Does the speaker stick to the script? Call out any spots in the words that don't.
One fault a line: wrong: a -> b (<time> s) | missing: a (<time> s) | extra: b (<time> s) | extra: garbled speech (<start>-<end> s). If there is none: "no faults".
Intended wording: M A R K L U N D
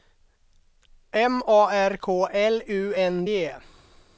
no faults